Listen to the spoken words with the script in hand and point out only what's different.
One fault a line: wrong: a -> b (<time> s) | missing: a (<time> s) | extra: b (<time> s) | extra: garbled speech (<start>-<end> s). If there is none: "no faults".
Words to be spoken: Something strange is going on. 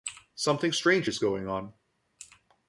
no faults